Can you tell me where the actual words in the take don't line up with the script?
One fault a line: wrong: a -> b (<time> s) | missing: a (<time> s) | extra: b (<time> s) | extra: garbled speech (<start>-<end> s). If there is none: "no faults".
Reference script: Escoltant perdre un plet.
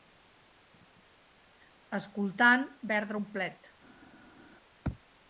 no faults